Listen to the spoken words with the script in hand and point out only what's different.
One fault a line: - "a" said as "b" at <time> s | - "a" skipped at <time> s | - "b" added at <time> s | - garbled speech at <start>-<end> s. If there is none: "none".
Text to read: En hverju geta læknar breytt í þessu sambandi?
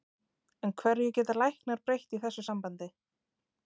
none